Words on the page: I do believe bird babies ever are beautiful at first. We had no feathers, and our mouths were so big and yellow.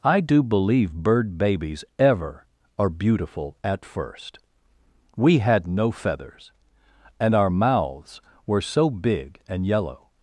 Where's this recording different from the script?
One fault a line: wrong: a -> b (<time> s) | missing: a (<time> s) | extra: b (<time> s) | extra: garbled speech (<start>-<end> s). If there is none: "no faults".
no faults